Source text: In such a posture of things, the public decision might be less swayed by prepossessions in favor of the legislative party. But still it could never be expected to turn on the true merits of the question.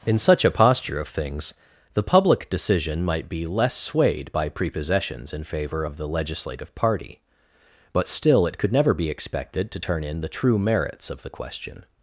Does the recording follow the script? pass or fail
fail